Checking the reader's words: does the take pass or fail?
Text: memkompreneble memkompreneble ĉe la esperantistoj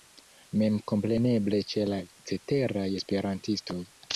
fail